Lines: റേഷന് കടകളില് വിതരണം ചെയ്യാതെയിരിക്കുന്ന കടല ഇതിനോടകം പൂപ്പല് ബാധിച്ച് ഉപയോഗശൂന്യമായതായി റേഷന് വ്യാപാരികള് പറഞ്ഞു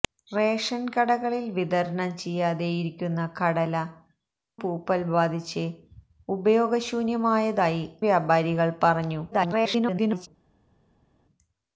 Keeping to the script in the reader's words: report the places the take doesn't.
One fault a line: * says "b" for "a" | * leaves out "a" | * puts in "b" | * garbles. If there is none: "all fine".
* leaves out "ഇതിനോടകം"
* leaves out "റേഷന്"
* garbles